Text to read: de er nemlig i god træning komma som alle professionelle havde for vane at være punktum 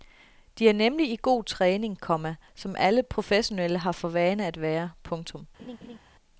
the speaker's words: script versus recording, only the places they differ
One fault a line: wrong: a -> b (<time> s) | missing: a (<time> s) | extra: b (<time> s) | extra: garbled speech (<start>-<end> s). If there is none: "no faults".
wrong: havde -> har (3.8 s)